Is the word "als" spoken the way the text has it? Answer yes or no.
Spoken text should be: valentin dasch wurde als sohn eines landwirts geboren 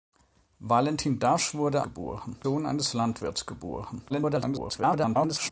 no